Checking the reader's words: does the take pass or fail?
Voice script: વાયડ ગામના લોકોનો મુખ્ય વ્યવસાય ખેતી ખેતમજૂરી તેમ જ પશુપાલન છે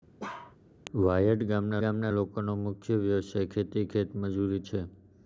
fail